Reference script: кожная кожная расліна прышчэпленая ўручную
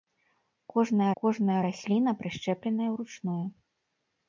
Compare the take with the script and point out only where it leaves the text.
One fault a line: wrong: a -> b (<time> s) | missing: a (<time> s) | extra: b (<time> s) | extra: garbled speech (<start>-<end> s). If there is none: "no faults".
no faults